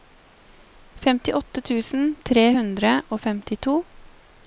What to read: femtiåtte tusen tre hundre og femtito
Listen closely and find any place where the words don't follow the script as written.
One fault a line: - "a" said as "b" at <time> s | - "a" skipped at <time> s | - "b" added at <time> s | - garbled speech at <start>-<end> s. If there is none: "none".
none